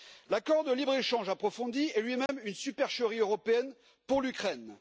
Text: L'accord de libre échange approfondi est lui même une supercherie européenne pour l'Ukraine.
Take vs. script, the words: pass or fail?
pass